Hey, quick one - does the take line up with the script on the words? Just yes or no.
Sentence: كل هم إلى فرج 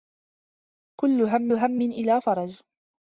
no